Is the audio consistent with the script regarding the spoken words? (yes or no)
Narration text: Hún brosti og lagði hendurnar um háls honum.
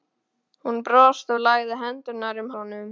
no